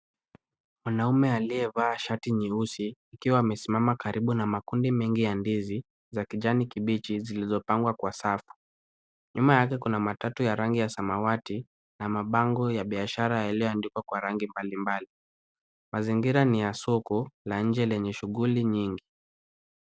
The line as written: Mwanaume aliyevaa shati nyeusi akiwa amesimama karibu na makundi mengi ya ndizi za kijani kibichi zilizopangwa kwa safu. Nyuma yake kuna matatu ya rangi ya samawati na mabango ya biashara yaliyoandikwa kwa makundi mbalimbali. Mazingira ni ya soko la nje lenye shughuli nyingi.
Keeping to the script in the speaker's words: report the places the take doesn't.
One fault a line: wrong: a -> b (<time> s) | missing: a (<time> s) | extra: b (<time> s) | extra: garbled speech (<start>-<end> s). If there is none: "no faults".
wrong: makundi -> rangi (14.2 s)